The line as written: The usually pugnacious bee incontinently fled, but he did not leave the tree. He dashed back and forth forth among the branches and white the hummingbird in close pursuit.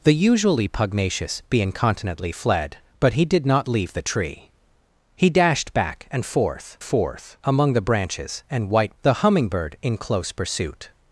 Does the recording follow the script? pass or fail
pass